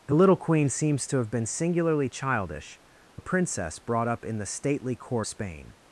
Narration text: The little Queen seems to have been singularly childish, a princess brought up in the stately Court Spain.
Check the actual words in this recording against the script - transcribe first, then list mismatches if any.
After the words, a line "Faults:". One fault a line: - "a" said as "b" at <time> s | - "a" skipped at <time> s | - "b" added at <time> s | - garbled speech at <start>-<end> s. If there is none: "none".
The little Queen seems to have been singularly childish, a princess brought up in the stately Court Spain.
Faults:
none